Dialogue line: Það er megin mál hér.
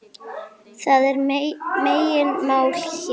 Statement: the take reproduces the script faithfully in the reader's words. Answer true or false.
true